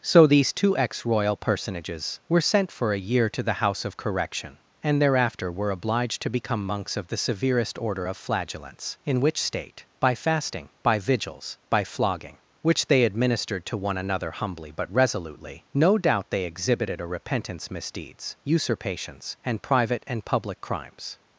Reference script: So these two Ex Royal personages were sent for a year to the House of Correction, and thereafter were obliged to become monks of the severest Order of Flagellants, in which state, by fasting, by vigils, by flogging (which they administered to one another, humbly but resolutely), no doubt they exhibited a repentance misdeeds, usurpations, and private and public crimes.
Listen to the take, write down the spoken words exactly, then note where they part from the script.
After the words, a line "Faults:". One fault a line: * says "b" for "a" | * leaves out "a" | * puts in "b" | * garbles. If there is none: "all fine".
So these two Ex Royal personages were sent for a year to the House of Correction, and thereafter were obliged to become monks of the severest Order of Flagellants, in which state, by fasting, by vigils, by flogging (which they administered to one another, humbly but resolutely), no doubt they exhibited a repentance misdeeds, usurpations, and private and public crimes.
Faults:
all fine